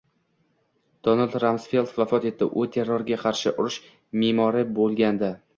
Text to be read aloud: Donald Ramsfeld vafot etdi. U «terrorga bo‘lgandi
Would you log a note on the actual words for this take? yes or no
yes